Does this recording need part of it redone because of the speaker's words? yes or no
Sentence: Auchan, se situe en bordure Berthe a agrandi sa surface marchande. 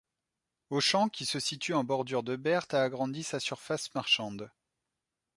yes